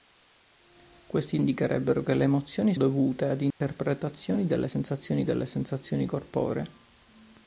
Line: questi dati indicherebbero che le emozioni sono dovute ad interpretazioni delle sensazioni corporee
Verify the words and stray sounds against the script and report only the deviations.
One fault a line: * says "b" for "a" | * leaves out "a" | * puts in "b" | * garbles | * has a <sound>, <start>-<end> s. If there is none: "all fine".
* leaves out "dati"
* leaves out "sono"
* has a dropout, 3.5-3.6 s
* puts in "delle sensazioni"